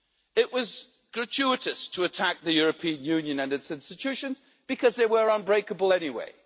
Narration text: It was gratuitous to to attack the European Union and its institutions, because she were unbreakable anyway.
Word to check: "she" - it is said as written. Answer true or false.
false